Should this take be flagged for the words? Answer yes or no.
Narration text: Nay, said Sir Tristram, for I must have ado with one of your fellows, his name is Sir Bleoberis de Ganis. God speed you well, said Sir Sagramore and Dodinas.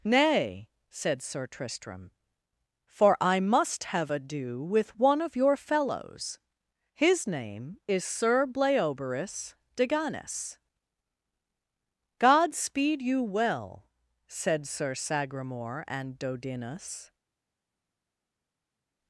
no